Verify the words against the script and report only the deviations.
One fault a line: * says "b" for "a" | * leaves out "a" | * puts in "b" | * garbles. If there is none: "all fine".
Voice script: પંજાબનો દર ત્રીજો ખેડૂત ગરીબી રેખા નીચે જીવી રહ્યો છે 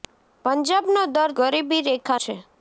* leaves out "ત્રીજો ખેડૂત"
* leaves out "નીચે જીવી રહ્યો"